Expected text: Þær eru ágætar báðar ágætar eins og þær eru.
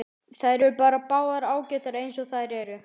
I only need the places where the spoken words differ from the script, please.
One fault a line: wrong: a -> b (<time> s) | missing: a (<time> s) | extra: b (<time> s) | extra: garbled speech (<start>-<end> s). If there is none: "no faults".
wrong: ágætar -> bara (0.8 s)